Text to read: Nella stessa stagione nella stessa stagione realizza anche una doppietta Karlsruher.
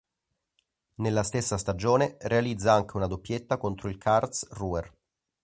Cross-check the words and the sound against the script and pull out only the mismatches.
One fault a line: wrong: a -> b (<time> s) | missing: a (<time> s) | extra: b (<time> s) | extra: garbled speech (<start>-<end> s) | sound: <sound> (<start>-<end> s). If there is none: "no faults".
missing: nella stessa stagione (2.2 s)
extra: contro il (3.6 s)